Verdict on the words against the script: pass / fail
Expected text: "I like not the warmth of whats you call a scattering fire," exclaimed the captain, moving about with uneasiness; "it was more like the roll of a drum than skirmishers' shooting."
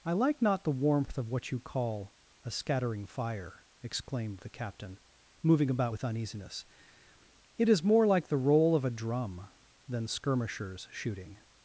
fail